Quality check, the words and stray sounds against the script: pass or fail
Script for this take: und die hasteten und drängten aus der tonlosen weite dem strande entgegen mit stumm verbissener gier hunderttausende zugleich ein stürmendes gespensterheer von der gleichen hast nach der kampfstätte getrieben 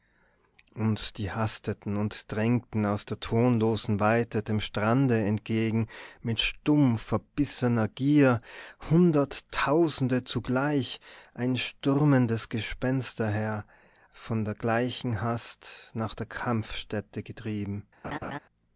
fail